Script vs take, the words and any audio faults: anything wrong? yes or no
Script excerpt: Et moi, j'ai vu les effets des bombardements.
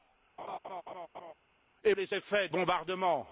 yes